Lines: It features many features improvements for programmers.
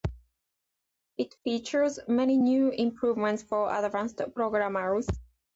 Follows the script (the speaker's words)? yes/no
no